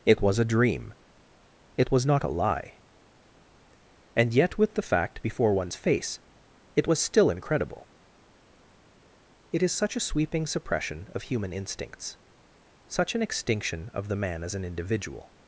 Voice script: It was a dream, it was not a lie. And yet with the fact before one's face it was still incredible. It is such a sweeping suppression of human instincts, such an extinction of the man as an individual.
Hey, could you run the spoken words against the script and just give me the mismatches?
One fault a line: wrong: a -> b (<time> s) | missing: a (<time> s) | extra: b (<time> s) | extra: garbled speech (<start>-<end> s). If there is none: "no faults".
no faults